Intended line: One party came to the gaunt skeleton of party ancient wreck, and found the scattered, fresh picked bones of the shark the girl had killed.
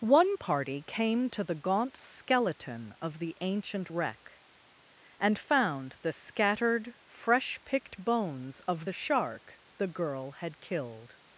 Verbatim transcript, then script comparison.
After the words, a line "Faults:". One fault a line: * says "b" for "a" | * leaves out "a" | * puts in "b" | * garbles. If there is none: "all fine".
One party came to the gaunt skeleton of the ancient wreck, and found the scattered, fresh picked bones of the shark the girl had killed.
Faults:
* says "the" for "party"